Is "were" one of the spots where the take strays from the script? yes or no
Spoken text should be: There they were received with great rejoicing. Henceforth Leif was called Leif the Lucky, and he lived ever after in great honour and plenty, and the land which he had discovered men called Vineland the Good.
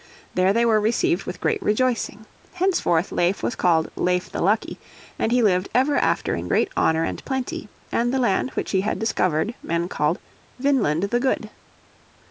no